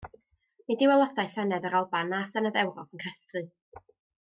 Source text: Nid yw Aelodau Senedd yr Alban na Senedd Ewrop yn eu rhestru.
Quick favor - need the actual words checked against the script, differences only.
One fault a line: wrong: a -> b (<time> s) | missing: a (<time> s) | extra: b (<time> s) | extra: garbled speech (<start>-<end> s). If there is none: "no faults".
no faults